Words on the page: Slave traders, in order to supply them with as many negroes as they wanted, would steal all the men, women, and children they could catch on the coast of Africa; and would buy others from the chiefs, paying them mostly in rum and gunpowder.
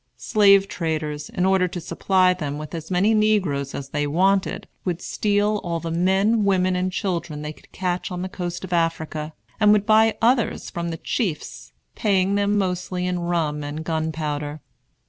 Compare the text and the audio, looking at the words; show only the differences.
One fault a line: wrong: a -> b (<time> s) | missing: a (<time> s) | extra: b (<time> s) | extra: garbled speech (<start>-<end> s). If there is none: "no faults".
no faults